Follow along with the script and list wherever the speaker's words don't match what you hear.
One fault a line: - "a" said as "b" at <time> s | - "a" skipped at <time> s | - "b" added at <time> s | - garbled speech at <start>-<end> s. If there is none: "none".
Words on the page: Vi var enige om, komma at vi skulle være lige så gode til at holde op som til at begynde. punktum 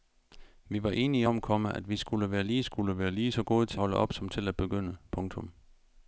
- "skulle være lige" added at 2.6 s
- "at" skipped at 3.8 s